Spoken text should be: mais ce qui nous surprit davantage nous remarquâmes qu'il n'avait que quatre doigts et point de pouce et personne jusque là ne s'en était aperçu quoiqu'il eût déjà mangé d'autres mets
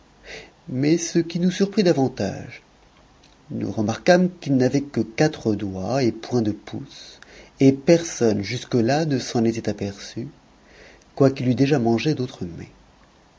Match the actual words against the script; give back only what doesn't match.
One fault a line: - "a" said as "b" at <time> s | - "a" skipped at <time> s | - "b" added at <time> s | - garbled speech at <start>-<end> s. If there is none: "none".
none